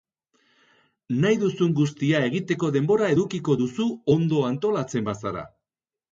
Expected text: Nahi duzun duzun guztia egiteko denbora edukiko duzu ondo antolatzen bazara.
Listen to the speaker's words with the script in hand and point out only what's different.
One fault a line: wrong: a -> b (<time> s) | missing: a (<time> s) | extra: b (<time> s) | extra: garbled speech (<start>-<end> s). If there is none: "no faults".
missing: duzun (1.8 s)